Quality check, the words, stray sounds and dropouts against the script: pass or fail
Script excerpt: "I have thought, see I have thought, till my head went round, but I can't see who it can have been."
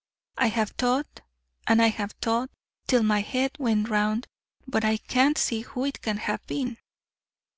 fail